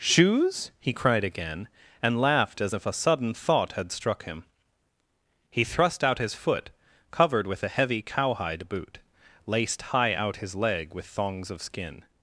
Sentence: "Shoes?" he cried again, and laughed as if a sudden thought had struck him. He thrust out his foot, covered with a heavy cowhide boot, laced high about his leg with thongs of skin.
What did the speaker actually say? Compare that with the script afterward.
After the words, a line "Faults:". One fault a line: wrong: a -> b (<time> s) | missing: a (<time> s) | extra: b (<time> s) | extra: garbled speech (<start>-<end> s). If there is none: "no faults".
"Shoes?" he cried again, and laughed as if a sudden thought had struck him. He thrust out his foot, covered with a heavy cowhide boot, laced high out his leg with thongs of skin.
Faults:
wrong: about -> out (10.1 s)